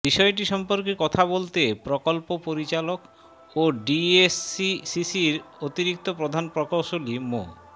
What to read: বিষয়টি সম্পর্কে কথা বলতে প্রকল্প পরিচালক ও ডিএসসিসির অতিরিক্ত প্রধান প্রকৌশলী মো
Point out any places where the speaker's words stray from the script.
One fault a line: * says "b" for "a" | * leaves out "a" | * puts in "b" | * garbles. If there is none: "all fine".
all fine